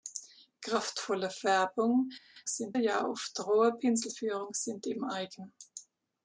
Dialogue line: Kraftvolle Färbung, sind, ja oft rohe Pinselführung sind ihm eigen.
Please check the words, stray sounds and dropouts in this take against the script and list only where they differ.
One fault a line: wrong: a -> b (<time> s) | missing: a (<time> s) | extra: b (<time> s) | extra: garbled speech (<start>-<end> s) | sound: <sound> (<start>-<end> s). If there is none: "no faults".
no faults